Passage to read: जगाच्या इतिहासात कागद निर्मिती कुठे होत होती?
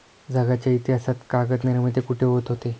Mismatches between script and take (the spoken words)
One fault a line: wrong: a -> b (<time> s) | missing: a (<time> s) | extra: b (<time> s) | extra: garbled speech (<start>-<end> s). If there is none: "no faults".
no faults